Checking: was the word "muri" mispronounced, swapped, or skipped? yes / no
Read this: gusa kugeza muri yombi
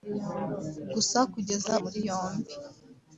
no